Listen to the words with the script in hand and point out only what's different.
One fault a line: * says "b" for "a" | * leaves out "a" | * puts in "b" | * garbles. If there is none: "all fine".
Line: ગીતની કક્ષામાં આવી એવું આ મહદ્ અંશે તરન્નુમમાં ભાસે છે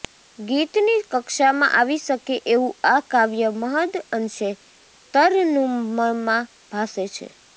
* puts in "શકે"
* puts in "કાવ્ય"